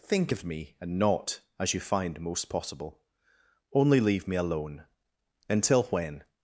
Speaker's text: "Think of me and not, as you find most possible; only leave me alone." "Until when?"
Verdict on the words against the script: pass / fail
pass